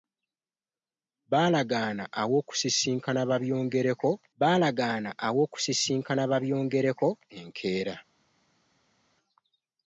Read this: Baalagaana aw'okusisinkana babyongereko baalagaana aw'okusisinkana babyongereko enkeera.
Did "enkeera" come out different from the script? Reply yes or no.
no